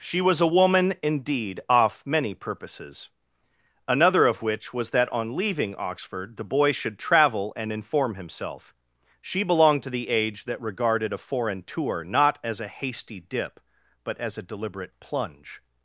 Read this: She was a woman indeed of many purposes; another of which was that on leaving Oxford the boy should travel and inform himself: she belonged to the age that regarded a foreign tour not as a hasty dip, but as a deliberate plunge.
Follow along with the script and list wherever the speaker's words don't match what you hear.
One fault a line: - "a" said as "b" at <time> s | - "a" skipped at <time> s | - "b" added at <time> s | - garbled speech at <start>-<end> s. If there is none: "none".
- "of" said as "off" at 1.7 s